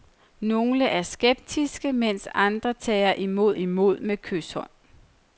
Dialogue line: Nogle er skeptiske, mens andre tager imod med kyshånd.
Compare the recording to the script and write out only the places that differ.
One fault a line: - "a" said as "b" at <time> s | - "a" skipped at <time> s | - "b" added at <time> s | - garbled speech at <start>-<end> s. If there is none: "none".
- "imod" added at 3.5 s